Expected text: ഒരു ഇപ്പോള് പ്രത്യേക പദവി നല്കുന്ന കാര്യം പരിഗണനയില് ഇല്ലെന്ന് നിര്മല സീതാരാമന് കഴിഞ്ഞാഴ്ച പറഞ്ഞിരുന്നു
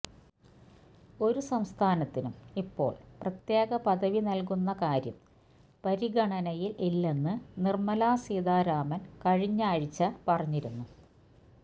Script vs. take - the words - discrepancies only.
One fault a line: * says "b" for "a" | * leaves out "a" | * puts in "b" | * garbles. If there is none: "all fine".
* puts in "സംസ്ഥാനത്തിനും"